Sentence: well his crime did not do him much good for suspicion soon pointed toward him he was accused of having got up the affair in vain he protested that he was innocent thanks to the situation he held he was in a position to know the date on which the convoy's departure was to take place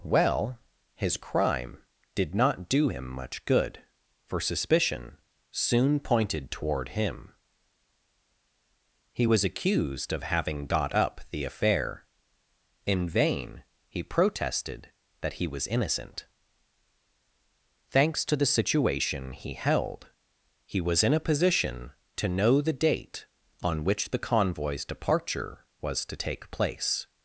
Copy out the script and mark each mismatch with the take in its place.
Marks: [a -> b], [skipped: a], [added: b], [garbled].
well his crime did not do him much good for suspicion soon pointed toward him he was accused of having got up the affair in vain he protested that he was innocent thanks to the situation he held he was in a position to know the date on which the convoy's departure was to take place